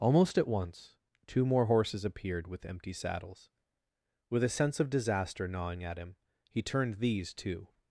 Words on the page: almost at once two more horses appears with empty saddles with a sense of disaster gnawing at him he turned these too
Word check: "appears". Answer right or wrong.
wrong